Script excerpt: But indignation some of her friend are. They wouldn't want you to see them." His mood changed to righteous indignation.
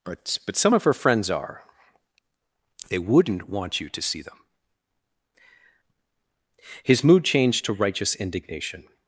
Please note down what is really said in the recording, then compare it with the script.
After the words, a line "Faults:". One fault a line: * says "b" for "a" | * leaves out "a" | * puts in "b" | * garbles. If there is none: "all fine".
But but some of her friends are. They wouldn't want you to see them." His mood changed to righteous indignation.
Faults:
* says "but" for "indignation"
* says "friends" for "friend"